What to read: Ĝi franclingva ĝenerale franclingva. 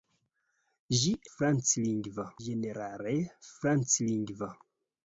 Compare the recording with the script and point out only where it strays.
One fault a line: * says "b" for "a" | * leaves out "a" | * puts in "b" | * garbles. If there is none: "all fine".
all fine